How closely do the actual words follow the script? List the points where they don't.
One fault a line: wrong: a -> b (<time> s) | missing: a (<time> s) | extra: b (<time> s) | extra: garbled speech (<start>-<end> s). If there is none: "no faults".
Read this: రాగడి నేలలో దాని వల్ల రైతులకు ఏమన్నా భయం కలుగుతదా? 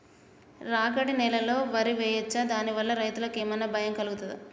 extra: వరి వేయచ్చా (1.7 s)